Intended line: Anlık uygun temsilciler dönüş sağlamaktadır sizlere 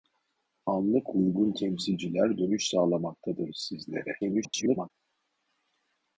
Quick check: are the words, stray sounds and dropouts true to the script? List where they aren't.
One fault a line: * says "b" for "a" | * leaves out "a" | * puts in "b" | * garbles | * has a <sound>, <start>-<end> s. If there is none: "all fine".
* garbles